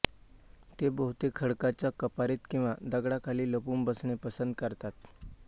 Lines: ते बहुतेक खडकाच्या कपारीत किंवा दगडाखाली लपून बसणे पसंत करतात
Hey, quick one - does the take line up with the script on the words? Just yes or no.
yes